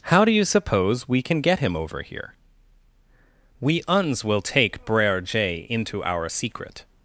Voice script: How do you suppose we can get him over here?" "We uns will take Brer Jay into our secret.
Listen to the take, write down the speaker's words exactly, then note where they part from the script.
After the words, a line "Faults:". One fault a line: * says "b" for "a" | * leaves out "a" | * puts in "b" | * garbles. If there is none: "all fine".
How do you suppose we can get him over here?" "We uns will take Brer Jay into our secret.
Faults:
all fine